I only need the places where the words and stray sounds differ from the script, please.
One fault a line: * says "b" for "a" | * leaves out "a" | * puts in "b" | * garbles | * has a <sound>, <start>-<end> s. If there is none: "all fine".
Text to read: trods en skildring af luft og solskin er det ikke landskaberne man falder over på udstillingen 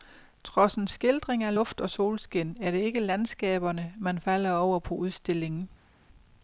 all fine